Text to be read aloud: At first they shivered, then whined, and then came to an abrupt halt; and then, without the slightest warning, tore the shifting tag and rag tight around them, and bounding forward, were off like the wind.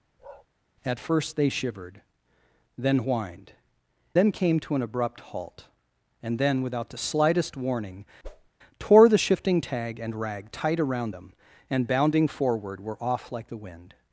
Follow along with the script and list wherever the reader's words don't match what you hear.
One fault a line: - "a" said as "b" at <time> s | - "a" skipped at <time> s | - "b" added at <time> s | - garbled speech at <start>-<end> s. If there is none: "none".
- "and" skipped at 3.5 s